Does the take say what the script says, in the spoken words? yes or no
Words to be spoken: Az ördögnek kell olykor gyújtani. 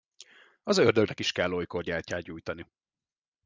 no